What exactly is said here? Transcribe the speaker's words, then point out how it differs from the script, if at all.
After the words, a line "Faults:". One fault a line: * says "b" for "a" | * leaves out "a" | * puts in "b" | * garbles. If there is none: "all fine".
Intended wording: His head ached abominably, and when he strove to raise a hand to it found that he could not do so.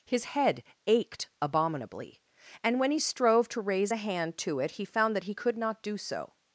His head ached abominably, and when he strove to raise a hand to it he found that he could not do so.
Faults:
* puts in "he"